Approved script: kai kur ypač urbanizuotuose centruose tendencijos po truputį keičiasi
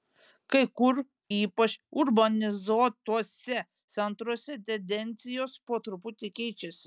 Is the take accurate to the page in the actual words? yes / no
yes